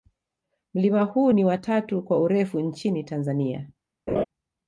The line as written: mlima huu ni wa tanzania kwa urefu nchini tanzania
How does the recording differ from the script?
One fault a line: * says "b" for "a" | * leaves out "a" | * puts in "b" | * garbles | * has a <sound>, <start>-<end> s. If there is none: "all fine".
* says "tatu" for "tanzania"
* has a laugh, 4.1-4.2 s